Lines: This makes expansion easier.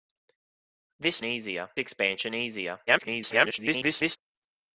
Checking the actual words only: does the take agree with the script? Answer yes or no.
no